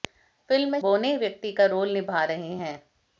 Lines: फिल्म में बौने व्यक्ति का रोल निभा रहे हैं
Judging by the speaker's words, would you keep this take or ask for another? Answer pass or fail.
pass